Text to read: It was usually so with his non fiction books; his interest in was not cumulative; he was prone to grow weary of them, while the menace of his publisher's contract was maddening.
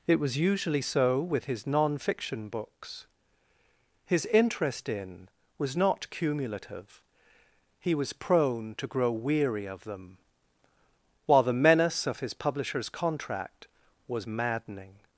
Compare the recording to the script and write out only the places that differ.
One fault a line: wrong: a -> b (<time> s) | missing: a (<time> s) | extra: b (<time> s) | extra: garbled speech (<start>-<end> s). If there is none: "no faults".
no faults